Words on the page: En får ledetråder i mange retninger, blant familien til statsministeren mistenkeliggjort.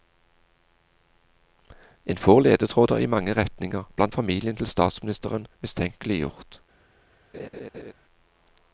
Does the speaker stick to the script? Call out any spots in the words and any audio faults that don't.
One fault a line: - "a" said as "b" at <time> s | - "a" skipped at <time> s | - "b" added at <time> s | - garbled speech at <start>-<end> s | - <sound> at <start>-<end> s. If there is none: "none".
- laugh at 7.3-7.9 s